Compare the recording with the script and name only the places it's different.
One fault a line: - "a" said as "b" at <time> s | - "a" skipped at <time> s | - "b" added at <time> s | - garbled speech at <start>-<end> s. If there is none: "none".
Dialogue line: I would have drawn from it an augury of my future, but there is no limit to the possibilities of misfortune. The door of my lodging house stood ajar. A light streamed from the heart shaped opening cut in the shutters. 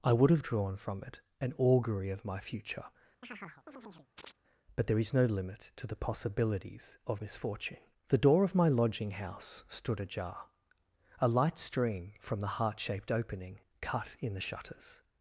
- "streamed" said as "stream" at 11.6 s